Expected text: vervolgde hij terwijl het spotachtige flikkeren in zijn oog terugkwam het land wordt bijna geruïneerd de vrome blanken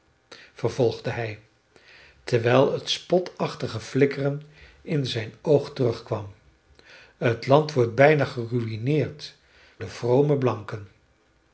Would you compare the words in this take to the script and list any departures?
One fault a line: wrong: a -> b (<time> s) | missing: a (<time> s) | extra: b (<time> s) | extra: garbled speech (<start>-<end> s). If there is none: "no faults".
no faults